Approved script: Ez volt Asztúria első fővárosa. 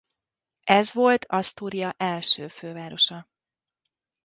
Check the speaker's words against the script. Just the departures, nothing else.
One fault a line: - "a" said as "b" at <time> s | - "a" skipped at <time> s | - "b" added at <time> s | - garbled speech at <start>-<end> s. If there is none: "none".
none